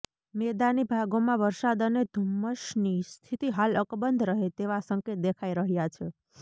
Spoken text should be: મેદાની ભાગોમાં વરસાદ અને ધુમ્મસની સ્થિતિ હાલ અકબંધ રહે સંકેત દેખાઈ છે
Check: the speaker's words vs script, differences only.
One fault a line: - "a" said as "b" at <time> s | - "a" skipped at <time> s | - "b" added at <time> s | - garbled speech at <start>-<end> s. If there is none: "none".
- "તેવા" added at 4.6 s
- "રહ્યા" added at 5.6 s